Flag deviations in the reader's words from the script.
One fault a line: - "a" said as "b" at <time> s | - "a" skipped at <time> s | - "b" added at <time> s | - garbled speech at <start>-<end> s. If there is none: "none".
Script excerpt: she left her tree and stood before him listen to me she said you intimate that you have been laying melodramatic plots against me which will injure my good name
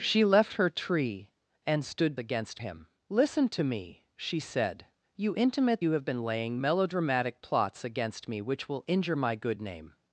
- "before" said as "against" at 2.2 s
- "that" skipped at 5.8 s